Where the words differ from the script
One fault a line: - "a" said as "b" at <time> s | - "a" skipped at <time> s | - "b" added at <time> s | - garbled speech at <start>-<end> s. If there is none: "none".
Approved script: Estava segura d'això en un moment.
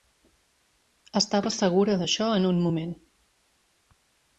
none